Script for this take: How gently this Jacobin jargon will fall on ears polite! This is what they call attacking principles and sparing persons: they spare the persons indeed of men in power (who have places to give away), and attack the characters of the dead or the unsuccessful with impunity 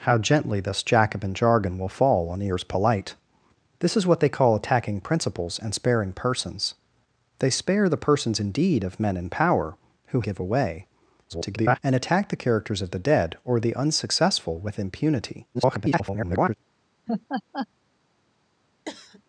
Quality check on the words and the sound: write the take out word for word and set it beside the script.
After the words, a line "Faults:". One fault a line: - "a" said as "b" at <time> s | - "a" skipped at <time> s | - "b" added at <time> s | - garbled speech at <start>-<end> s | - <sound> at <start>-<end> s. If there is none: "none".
How gently this Jacobin jargon will fall on ears polite! This is what they call attacking principles and sparing persons: they spare the persons indeed of men in power (who give away), [garbled] and attack the characters of the dead or the unsuccessful with impunity [garbled]
Faults:
- "have places to" skipped at 10.2 s
- garbled speech at 11.3-11.8 s
- garbled speech at 15.5-16.5 s
- laugh at 17.1-17.7 s
- cough at 18.9-19.2 s